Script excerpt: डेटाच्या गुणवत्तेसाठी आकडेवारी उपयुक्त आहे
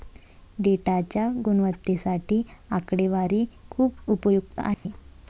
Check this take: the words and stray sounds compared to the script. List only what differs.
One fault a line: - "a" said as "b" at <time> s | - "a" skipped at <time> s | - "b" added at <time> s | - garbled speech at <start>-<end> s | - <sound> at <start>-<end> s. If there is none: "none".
- "खूप" added at 3.7 s
- dropout at 4.7-4.9 s